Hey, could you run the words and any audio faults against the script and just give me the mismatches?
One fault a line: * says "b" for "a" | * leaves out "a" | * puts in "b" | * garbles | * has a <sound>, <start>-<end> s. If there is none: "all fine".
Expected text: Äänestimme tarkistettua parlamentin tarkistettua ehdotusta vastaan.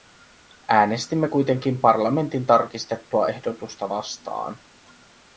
* says "kuitenkin" for "tarkistettua"